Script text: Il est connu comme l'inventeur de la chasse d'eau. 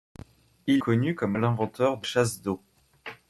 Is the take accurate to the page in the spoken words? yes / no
no